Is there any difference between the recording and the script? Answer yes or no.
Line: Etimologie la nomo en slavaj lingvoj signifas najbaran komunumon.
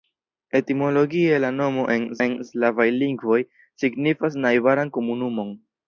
yes